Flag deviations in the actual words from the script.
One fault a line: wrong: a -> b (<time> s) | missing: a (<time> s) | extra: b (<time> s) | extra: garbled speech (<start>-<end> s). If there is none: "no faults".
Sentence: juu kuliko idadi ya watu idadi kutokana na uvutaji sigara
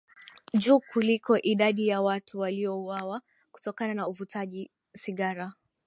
wrong: idadi -> waliouawa (2.4 s)